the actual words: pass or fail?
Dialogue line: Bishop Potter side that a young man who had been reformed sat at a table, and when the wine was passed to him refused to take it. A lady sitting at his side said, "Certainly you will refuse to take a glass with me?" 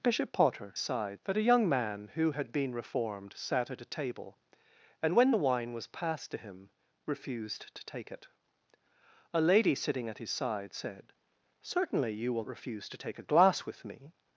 pass